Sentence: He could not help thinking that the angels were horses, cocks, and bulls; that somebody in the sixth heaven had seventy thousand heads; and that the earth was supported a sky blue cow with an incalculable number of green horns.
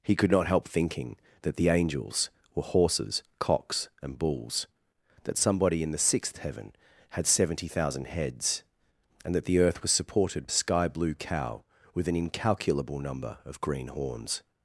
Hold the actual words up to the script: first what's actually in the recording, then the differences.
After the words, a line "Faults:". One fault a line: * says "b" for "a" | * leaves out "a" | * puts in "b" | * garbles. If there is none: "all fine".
He could not help thinking that the angels were horses, cocks, and bulls; that somebody in the sixth heaven had seventy thousand heads; and that the earth was supported a sky blue cow with an incalculable number of green horns.
Faults:
all fine